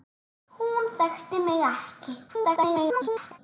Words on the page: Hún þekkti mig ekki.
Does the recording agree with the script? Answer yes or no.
no